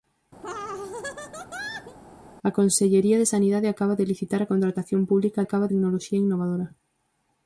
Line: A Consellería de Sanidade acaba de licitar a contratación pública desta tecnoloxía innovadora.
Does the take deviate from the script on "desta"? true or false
true